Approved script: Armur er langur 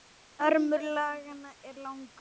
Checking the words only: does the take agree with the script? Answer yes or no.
no